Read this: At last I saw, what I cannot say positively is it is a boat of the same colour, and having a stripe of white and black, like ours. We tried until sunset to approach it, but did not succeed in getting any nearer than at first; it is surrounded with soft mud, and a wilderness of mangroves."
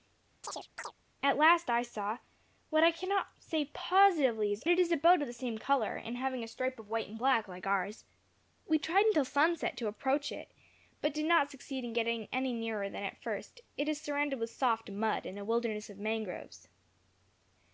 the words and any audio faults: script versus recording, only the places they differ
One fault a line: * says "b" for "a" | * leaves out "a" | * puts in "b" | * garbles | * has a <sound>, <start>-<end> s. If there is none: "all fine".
* has a chirp, 0.4-0.9 s